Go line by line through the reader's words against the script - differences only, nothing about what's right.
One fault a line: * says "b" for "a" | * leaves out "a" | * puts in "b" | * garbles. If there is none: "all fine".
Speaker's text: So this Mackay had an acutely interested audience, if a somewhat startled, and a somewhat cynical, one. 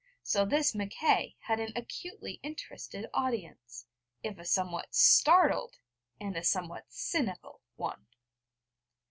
all fine